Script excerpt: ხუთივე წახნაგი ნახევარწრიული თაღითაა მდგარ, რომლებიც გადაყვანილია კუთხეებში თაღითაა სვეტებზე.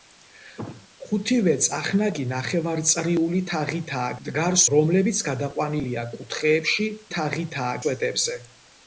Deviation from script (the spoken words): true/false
false